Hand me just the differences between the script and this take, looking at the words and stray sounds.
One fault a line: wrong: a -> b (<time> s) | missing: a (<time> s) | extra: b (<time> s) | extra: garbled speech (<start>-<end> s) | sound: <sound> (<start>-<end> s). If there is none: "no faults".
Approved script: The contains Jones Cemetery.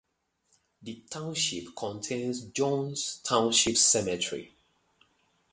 extra: township (1.1 s)
extra: Township (3.2 s)